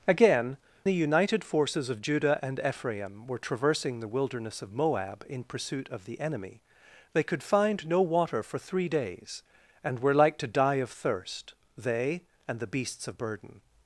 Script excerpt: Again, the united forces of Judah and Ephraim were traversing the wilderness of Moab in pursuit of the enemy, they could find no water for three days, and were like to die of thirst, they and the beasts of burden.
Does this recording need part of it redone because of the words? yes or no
no